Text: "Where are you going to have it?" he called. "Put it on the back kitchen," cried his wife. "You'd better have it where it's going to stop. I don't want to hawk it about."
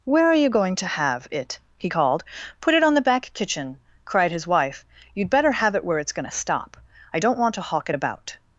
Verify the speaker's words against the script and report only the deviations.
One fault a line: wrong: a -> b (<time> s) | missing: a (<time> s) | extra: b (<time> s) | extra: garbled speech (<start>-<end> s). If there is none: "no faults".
no faults